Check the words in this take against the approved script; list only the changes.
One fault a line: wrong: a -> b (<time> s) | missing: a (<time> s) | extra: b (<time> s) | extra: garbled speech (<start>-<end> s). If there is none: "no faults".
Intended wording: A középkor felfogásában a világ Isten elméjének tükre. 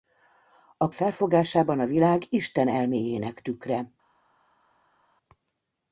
missing: középkor (0.9 s)